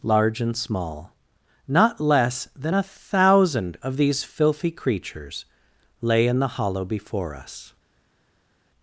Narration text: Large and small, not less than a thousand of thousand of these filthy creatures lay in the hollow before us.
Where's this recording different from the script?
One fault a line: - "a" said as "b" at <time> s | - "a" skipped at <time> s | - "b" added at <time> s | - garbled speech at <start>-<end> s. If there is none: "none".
- "thousand of" skipped at 4.0 s